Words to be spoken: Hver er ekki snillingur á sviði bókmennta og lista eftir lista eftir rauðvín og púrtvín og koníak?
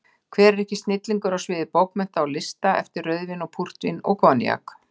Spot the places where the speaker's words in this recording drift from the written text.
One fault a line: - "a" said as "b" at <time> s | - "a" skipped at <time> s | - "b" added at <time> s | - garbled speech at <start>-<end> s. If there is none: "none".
- "lista eftir" skipped at 3.1 s